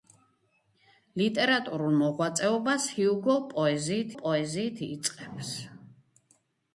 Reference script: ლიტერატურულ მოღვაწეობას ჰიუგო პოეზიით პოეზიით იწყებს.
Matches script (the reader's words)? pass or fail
pass